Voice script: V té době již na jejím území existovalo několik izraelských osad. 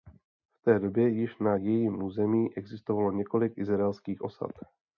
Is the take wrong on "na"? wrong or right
right